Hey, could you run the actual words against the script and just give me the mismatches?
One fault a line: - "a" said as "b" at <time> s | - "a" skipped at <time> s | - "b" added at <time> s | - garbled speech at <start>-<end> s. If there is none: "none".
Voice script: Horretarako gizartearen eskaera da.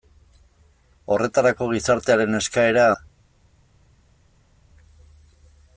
none